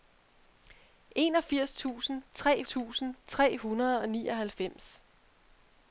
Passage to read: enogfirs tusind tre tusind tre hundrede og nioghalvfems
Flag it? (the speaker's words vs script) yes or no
no